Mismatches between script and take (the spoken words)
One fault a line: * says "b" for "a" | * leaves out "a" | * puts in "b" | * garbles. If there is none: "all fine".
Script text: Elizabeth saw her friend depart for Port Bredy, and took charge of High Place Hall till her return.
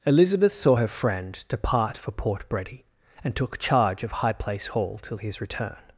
* says "his" for "her"